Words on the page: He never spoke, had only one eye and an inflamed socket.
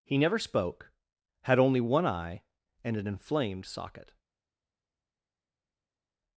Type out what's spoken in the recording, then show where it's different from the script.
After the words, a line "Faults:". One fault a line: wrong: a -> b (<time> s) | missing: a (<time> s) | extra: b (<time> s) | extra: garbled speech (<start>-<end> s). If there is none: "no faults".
He never spoke, had only one eye and an inflamed socket.
Faults:
no faults